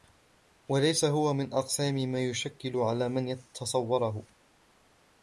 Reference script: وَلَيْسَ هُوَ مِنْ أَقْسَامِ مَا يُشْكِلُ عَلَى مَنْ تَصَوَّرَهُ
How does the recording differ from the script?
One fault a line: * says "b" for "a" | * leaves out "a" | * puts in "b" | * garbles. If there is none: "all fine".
all fine